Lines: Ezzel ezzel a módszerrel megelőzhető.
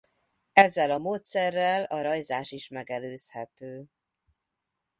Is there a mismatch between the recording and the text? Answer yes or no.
yes